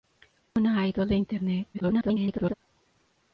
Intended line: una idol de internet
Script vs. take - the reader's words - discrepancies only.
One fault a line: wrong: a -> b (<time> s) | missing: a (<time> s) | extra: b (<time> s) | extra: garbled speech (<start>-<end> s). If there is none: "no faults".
extra: garbled speech (1.7-2.5 s)